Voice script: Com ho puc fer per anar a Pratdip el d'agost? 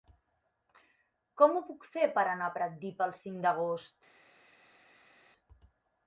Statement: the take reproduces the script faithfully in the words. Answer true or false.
false